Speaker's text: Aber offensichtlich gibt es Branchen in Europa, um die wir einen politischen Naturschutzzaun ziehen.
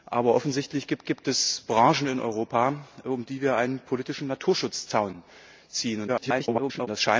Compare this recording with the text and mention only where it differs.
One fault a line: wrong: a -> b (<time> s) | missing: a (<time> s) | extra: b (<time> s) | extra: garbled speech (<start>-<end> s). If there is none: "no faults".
extra: gibt (1.1 s)
extra: garbled speech (6.1-6.9 s)